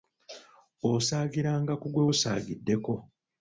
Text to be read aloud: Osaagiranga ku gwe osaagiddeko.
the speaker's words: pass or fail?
pass